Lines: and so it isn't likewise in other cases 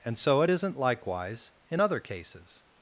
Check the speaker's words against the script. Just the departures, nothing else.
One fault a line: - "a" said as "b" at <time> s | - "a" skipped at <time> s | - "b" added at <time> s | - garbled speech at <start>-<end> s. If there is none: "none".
none